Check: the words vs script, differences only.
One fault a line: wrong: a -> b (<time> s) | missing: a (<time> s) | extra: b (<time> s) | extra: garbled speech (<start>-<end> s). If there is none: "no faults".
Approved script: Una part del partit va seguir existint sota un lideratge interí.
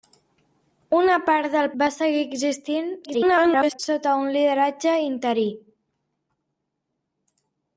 missing: partit (1.7 s)
extra: garbled speech (3.0-3.8 s)